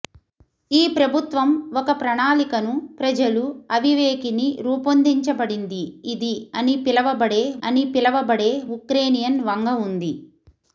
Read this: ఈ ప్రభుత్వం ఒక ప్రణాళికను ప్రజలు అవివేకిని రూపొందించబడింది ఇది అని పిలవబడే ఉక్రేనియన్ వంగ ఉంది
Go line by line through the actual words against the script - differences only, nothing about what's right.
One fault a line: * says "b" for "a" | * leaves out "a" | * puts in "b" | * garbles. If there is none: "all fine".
* puts in "అని పిలవబడే"